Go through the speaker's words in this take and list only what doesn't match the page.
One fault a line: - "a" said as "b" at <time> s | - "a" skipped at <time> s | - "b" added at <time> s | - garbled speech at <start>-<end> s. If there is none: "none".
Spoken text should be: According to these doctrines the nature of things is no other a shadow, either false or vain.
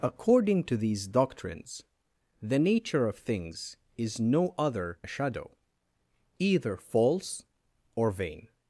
none